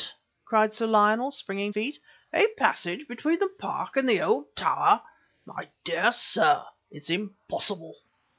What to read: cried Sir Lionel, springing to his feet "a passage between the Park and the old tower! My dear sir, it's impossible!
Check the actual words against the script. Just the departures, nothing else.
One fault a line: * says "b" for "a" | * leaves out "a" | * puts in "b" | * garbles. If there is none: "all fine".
* leaves out "to his"